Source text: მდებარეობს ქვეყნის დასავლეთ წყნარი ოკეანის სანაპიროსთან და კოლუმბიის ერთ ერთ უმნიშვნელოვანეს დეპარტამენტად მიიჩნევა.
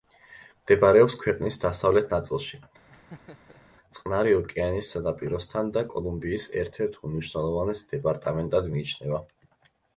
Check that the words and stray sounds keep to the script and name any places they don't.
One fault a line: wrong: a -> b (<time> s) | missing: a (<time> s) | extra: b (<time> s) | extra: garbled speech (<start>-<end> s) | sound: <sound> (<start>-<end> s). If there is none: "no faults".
extra: ნაწილში (2.1 s)
sound: laugh (2.9-3.6 s)